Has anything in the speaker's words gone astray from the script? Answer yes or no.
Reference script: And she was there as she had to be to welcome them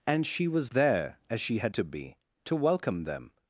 no